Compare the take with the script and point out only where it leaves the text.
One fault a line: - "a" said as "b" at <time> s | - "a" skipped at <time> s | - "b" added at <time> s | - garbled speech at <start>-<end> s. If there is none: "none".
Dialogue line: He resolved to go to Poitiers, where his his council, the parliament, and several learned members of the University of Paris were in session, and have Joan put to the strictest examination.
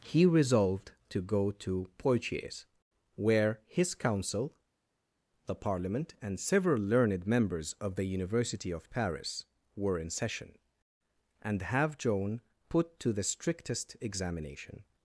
- "his" skipped at 4.0 s